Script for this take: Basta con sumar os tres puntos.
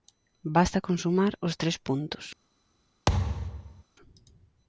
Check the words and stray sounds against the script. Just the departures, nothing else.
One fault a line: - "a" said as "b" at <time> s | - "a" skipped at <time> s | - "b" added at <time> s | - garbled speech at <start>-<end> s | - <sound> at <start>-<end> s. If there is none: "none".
- thud at 3.1-3.8 s